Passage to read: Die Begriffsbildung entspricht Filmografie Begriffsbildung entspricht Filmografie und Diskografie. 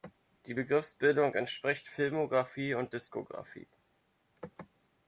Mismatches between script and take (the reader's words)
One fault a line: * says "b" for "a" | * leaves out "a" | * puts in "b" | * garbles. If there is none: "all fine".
* leaves out "Begriffsbildung entspricht Filmografie"